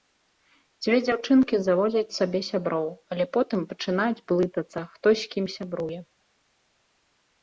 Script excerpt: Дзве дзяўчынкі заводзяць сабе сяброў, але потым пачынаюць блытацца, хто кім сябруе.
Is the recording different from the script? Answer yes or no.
yes